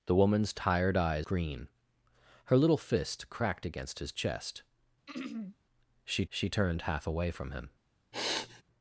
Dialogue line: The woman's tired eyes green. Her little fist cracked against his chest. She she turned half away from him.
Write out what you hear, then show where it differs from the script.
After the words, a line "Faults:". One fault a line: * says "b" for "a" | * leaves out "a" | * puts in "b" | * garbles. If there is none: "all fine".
The woman's tired eyes green. Her little fist cracked against his chest. She she turned half away from him.
Faults:
all fine